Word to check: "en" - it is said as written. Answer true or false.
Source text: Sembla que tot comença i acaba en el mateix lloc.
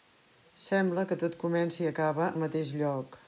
false